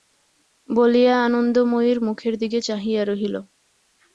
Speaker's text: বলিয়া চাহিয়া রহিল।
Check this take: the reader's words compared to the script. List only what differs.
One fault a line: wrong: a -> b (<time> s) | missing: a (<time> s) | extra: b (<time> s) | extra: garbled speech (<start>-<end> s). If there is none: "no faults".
extra: আনন্দময়ীর মুখের দিকে (1.2 s)